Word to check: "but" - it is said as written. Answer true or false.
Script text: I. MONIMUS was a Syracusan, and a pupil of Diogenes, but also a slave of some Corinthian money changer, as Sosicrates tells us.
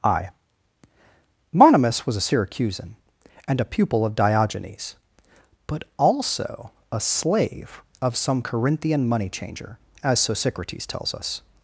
true